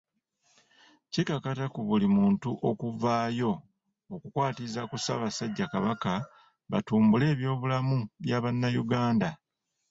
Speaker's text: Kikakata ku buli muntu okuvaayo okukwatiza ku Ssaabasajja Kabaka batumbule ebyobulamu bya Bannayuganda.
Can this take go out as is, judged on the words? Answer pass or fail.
pass